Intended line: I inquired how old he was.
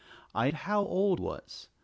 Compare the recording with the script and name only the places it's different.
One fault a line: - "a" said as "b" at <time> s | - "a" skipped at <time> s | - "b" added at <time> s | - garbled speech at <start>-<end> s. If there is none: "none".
- "inquired" skipped at 0.5 s
- "he" skipped at 1.2 s